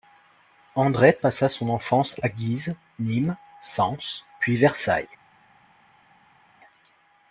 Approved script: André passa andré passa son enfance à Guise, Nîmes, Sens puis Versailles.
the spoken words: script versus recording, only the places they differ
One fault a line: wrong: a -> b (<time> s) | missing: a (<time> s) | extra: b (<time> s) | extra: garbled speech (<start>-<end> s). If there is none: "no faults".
missing: andré passa (1.5 s)